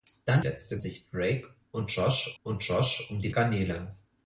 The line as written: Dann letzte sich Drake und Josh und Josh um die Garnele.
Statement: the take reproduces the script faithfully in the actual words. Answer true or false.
true